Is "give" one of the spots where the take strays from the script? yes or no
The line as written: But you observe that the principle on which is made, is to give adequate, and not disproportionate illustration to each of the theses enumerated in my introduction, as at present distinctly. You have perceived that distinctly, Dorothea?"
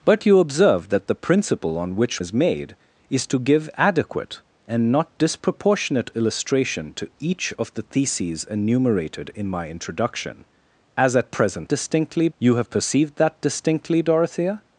no